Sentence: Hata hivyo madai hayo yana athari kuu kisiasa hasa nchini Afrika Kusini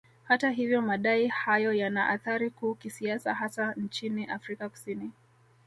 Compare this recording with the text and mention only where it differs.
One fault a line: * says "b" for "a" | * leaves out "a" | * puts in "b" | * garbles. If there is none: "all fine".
all fine